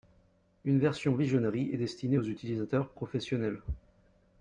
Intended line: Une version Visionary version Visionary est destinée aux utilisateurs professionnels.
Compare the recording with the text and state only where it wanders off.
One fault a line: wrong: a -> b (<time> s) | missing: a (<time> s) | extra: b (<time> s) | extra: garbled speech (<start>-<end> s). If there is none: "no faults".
missing: version Visionary (1.7 s)